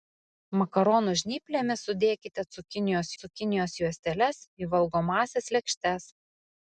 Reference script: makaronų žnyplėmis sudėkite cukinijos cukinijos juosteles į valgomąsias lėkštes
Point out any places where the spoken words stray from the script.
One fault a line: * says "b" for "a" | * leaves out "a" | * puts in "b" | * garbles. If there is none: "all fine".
all fine